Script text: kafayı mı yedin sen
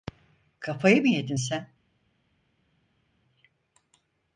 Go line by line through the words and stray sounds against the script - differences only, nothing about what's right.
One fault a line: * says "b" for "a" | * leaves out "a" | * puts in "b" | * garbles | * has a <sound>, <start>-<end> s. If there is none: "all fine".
all fine